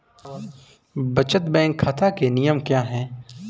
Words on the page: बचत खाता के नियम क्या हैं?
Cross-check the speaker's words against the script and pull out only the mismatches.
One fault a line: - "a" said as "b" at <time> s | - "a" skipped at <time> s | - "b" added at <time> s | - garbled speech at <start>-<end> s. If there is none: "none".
- "बैंक" added at 1.4 s